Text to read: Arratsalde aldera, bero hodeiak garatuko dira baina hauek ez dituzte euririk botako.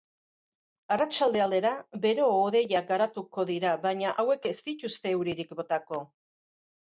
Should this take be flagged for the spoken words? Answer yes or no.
no